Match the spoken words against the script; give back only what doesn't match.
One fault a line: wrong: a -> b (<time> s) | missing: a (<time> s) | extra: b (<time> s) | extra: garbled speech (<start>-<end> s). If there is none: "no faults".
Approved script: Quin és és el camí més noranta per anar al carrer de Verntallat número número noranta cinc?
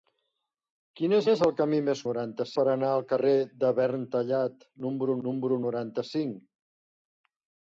no faults